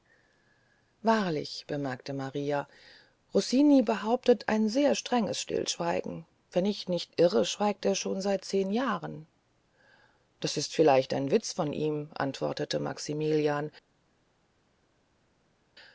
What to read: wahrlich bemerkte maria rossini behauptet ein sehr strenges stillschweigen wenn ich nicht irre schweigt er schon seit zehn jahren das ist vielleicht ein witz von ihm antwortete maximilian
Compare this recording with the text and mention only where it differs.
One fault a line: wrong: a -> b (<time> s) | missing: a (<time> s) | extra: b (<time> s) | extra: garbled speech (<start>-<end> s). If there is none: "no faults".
no faults